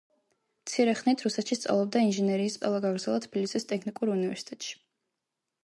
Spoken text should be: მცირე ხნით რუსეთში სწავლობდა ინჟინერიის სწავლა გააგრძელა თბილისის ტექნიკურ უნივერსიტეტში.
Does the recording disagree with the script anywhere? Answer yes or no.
no